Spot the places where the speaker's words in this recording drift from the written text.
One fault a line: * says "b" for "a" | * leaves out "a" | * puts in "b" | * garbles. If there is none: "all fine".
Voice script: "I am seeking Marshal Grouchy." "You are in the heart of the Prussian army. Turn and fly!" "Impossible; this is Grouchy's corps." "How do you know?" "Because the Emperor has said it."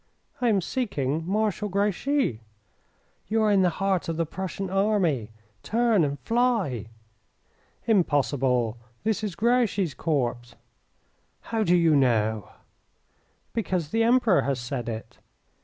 all fine